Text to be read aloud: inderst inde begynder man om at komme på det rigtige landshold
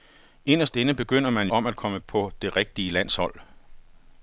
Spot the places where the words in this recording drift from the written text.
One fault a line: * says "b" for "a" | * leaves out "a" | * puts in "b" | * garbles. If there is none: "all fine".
all fine